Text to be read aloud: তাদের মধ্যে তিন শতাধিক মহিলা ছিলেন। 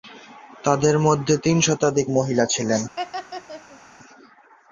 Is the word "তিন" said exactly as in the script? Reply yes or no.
yes